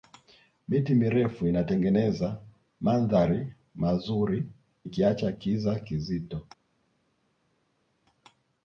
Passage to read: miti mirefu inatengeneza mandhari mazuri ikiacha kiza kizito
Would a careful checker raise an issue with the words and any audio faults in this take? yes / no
no